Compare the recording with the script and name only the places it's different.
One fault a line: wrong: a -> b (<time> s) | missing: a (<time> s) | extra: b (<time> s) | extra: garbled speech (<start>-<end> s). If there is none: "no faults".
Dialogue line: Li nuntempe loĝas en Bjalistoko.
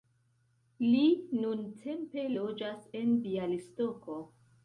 no faults